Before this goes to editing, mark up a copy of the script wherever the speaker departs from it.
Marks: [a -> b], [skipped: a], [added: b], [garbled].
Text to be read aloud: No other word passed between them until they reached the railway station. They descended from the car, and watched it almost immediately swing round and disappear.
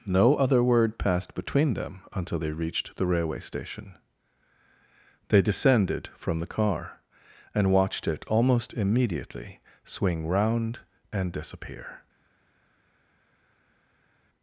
No other word passed between them until they reached the railway station. They descended from the car, and watched it almost immediately swing round and disappear.